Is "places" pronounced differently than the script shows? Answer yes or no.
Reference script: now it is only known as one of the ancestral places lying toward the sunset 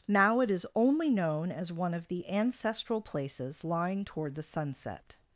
no